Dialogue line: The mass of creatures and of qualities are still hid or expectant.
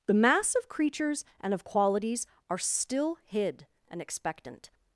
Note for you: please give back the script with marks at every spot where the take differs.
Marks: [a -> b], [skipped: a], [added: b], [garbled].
The mass of creatures and of qualities are still hid [or -> and] expectant.